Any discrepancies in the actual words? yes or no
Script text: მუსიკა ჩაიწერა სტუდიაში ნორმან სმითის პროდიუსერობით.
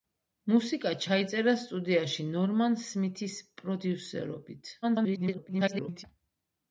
yes